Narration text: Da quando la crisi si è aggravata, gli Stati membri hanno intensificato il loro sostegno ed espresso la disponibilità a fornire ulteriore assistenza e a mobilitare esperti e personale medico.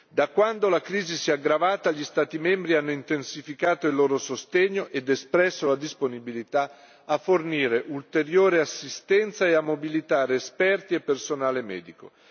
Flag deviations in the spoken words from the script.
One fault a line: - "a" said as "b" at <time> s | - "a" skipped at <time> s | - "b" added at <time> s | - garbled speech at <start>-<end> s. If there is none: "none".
none